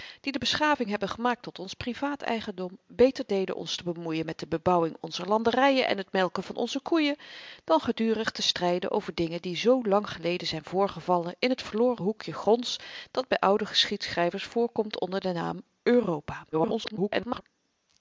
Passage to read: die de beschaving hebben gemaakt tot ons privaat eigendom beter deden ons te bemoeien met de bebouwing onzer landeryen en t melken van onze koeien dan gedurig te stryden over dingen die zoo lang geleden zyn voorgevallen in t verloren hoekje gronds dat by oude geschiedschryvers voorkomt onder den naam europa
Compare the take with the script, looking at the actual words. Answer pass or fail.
fail